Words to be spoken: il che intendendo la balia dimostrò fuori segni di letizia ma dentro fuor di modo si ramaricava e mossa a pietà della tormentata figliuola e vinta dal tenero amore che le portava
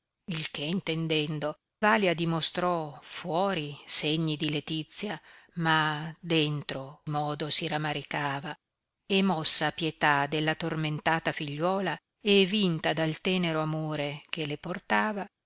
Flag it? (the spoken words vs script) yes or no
yes